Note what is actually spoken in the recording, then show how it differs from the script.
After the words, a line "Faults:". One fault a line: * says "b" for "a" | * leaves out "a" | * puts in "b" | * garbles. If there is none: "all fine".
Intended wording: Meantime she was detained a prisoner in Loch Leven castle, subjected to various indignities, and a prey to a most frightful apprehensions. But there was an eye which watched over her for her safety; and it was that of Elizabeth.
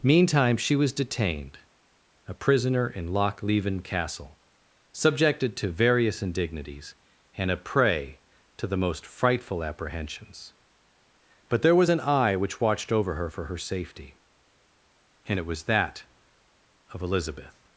Meantime she was detained a prisoner in Loch Leven castle, subjected to various indignities, and a prey to the most frightful apprehensions. But there was an eye which watched over her for her safety; and it was that of Elizabeth.
Faults:
* says "the" for "a"